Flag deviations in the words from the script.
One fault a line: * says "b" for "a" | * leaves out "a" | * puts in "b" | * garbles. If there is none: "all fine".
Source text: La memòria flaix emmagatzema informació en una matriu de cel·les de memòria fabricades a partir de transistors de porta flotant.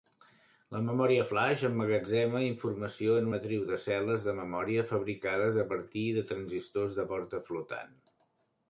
* leaves out "una"